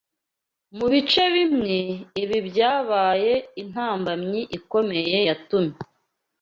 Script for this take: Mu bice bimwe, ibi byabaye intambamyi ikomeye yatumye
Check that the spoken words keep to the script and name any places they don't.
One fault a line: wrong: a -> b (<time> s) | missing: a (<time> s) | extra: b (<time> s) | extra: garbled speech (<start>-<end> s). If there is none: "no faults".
no faults